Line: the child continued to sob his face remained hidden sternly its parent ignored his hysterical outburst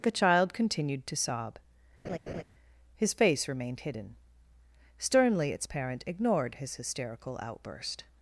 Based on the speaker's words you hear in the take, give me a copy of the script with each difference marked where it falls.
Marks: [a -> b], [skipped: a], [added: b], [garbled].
the child continued to sob his face remained hidden sternly its parent ignored his hysterical outburst